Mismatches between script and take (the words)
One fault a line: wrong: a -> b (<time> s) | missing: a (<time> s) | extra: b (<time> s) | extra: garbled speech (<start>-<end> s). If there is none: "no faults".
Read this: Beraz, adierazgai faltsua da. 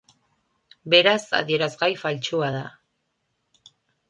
no faults